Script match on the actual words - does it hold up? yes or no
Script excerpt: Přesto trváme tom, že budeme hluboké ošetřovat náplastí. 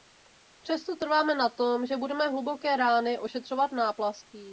no